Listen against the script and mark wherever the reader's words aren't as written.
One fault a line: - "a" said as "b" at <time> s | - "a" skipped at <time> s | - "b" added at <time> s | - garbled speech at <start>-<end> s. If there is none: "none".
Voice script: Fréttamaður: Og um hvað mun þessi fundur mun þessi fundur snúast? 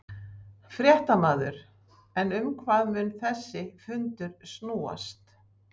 - "Og" said as "En" at 2.2 s
- "mun þessi fundur" skipped at 4.4 s